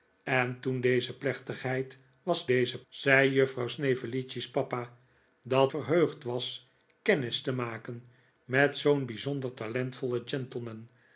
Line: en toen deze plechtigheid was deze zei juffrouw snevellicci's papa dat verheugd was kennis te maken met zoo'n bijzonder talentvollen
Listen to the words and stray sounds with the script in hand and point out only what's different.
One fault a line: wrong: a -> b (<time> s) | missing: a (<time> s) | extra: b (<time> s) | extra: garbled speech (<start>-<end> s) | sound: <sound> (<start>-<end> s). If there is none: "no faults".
no faults